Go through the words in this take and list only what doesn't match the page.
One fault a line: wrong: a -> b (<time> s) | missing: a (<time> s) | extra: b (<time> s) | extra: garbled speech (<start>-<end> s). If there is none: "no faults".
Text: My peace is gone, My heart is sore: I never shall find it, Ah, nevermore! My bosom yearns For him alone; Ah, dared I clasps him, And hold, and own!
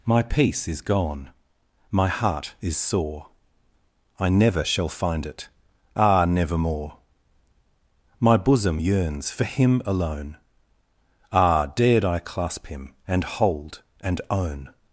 wrong: clasps -> clasp (12.2 s)